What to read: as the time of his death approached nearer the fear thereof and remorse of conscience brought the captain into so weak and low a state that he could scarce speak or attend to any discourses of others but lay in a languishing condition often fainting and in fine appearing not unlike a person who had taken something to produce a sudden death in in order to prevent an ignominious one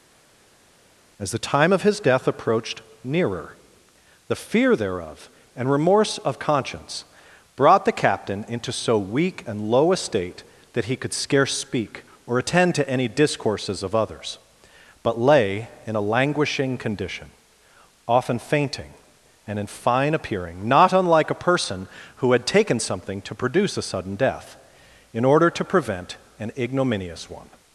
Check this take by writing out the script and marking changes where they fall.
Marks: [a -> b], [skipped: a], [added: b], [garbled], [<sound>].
as the time of his death approached nearer the fear thereof and remorse of conscience brought the captain into so weak and low a state that he could scarce speak or attend to any discourses of others but lay in a languishing condition often fainting and in fine appearing not unlike a person who had taken something to produce a sudden death in [skipped: in] order to prevent an ignominious one